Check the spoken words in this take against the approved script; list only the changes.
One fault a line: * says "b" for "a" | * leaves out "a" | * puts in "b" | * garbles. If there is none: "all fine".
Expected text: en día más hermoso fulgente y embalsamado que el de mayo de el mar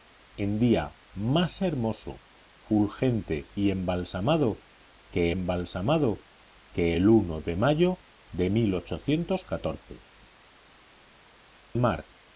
* puts in "embalsamado que"
* leaves out "el"